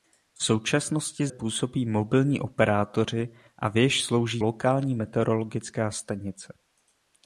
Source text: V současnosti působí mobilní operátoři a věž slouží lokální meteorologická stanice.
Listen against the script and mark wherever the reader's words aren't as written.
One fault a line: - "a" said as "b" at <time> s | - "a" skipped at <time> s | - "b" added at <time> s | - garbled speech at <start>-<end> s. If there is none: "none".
none